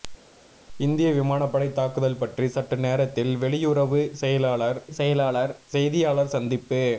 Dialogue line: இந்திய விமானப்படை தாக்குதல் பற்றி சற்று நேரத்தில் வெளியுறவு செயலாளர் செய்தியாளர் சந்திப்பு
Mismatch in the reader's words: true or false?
true